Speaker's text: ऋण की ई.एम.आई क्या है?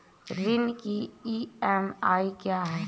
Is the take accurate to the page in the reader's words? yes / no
yes